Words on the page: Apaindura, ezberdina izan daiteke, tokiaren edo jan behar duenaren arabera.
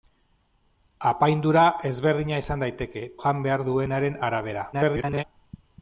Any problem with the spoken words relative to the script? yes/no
yes